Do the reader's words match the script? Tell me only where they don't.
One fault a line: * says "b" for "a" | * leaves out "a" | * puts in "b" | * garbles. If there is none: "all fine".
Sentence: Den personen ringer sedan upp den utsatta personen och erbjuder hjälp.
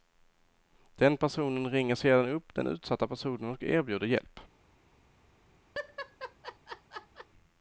all fine